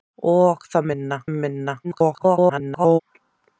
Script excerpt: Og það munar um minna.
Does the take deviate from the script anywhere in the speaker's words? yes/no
yes